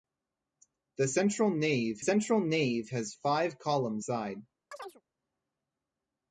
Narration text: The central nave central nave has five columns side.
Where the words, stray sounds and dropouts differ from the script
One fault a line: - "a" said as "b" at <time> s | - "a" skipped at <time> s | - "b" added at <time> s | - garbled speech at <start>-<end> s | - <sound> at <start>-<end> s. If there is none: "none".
- chirp at 4.7-5.0 s